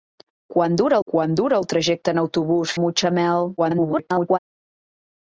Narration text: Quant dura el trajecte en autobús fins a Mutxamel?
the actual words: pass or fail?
fail